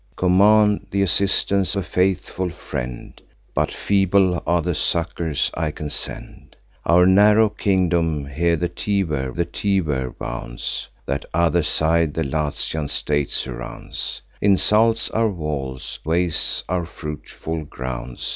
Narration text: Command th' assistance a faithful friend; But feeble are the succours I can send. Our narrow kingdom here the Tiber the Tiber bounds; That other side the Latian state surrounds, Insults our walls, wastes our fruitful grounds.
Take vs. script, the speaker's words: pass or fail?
pass